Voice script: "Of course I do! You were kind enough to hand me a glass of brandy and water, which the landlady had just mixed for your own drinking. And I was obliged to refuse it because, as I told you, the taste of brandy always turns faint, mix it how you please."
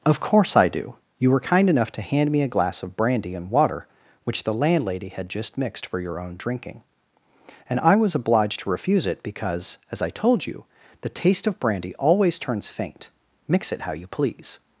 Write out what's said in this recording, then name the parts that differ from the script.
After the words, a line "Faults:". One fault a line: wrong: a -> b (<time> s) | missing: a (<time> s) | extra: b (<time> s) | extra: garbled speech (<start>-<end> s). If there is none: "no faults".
"Of course I do! You were kind enough to hand me a glass of brandy and water, which the landlady had just mixed for your own drinking. And I was obliged to refuse it because, as I told you, the taste of brandy always turns faint, mix it how you please."
Faults:
no faults